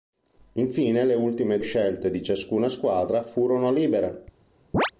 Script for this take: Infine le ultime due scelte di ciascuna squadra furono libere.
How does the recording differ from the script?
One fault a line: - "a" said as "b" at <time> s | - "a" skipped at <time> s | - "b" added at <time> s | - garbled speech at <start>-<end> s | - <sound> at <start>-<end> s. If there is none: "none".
- "due" skipped at 1.6 s
- chirp at 4.7-4.9 s